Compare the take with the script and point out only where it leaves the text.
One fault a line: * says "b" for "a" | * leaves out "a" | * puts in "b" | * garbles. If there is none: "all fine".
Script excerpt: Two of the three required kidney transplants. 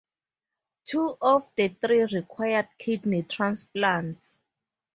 all fine